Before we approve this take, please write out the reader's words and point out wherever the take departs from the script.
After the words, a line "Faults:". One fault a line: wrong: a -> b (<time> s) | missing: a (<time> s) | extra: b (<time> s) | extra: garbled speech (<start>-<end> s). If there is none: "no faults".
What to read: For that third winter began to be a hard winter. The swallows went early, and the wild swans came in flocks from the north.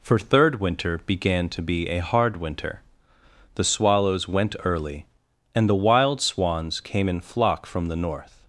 For third winter began to be a hard winter. The swallows went early, and the wild swans came in flock from the north.
Faults:
missing: that (0.2 s)
wrong: flocks -> flock (7.2 s)